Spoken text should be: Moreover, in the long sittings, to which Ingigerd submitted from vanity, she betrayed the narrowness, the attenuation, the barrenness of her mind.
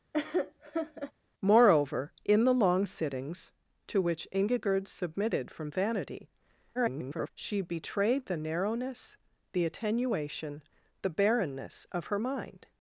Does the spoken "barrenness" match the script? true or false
true